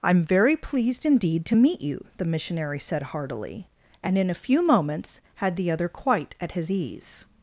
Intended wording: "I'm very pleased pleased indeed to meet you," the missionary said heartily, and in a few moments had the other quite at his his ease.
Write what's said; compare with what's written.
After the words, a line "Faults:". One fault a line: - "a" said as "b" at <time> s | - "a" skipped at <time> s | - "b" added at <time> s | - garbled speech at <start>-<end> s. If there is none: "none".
"I'm very pleased indeed to meet you," the missionary said heartily, and in a few moments had the other quite at his ease.
Faults:
- "pleased" skipped at 1.1 s
- "his" skipped at 6.7 s